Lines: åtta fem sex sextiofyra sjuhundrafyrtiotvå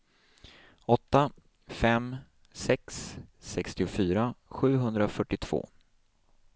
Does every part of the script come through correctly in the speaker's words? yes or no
yes